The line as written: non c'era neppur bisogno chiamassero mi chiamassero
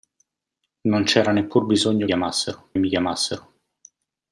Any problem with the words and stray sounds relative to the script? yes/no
no